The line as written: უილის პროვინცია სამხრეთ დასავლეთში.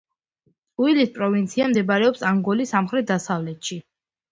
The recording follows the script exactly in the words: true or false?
false